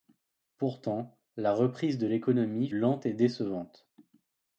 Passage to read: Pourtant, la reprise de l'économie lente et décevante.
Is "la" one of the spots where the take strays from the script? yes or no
no